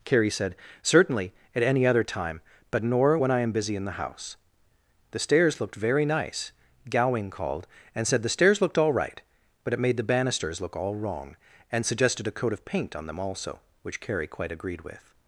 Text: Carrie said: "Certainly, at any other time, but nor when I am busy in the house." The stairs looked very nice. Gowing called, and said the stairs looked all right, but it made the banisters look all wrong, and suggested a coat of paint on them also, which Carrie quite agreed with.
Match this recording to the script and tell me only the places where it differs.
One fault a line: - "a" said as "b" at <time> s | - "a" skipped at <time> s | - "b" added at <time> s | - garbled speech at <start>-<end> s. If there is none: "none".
none